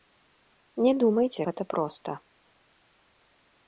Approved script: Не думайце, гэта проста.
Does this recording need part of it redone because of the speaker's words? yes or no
no